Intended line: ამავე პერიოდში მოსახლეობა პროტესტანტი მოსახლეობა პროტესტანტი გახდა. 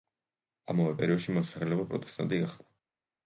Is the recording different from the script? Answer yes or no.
yes